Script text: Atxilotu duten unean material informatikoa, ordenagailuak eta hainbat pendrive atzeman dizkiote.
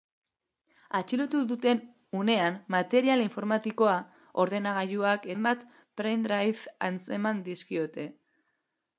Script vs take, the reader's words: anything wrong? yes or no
yes